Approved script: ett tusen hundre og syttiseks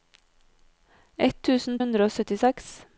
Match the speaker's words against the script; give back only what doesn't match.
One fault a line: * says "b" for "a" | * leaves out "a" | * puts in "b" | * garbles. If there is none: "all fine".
all fine